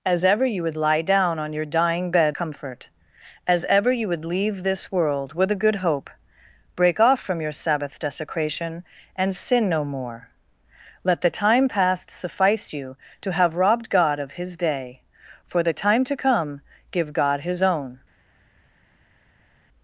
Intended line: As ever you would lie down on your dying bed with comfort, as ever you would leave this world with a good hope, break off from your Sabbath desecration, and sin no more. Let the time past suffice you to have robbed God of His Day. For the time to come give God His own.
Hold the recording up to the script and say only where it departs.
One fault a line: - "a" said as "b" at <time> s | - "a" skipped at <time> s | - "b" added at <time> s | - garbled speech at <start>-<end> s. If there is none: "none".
- "with" skipped at 2.4 s